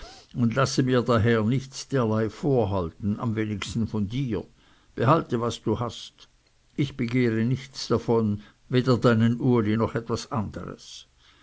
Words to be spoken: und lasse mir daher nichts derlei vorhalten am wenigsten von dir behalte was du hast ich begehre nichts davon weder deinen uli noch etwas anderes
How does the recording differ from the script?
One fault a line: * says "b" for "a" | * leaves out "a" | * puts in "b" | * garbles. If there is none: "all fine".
all fine